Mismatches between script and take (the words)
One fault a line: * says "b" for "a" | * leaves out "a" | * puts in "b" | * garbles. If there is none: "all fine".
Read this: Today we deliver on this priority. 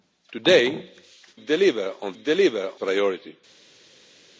* leaves out "we"
* says "deliver" for "this"